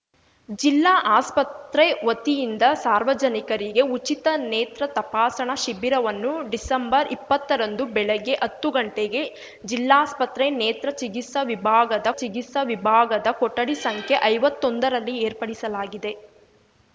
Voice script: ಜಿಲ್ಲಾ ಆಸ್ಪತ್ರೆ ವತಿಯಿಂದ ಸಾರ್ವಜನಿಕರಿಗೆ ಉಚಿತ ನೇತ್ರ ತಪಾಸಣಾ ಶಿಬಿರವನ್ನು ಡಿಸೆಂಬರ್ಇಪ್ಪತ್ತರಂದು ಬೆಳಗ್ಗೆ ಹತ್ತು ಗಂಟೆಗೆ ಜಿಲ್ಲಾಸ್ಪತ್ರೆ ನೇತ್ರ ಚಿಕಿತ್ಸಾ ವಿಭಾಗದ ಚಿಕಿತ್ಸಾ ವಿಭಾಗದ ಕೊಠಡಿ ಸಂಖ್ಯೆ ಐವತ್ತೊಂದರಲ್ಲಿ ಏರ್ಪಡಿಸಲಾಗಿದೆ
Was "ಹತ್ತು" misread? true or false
false